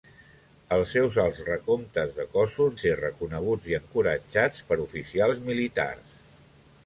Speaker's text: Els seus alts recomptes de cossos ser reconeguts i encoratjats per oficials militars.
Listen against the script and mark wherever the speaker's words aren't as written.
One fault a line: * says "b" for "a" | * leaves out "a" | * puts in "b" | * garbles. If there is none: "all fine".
all fine